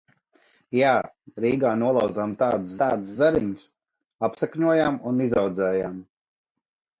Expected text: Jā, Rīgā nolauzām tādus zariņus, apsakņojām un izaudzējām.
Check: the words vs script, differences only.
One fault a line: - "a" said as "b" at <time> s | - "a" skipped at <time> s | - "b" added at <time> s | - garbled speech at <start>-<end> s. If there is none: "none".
- "tādus" added at 2.8 s